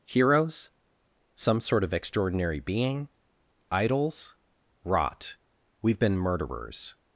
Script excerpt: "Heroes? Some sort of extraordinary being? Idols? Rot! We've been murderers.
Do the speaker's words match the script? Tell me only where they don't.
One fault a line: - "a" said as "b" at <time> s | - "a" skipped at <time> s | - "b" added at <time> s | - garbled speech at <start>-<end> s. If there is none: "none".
none